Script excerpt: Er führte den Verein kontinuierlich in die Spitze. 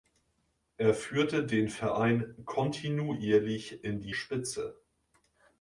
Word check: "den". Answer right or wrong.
right